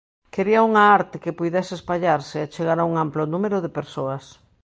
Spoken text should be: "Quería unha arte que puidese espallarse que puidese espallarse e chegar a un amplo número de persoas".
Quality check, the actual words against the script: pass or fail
fail